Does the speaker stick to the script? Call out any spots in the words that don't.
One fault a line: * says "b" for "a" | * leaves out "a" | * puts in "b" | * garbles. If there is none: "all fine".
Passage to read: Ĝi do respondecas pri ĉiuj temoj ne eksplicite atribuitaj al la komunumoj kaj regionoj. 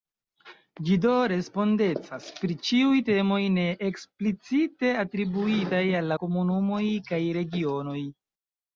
all fine